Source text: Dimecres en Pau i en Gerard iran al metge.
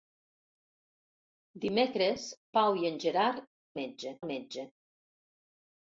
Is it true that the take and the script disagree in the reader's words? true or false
true